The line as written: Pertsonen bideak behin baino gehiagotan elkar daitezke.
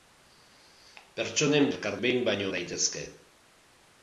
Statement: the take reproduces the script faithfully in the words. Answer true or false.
false